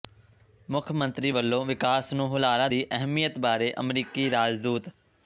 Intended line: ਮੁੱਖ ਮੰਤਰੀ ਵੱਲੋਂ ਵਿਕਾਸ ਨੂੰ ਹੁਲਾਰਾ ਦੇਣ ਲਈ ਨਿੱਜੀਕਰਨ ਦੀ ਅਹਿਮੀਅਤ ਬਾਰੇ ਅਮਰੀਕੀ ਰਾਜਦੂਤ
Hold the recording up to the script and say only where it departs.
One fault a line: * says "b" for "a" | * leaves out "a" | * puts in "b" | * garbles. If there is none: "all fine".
* leaves out "ਦੇਣ ਲਈ ਨਿੱਜੀਕਰਨ"